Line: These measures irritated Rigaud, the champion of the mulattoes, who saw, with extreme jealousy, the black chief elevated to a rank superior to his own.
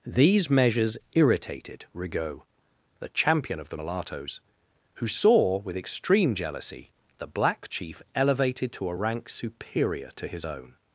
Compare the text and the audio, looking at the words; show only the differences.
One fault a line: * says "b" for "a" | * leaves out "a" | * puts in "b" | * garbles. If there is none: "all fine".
all fine